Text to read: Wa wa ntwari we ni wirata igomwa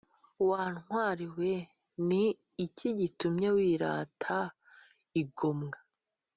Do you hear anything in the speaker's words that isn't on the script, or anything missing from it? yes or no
yes